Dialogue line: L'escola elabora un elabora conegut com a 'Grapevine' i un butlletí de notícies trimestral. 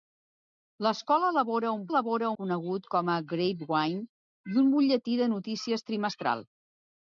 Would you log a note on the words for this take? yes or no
no